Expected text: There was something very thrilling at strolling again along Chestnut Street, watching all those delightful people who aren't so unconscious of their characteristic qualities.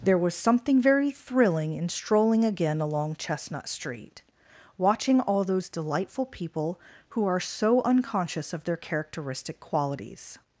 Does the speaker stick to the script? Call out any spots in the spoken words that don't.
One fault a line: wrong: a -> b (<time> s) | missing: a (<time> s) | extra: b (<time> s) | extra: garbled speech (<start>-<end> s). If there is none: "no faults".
wrong: at -> in (1.7 s)
wrong: aren't -> are (7.3 s)